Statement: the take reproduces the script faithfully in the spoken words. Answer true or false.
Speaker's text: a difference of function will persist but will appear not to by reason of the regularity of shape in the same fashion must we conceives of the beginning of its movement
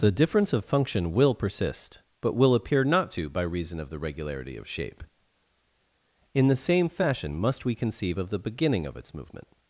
false